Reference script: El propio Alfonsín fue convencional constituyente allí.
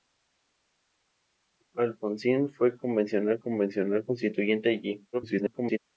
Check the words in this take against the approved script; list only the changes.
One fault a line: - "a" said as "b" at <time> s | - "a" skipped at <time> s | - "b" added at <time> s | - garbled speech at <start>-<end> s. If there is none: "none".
- "propio" skipped at 1.7 s
- "convencional" added at 3.4 s
- garbled speech at 5.1-5.8 s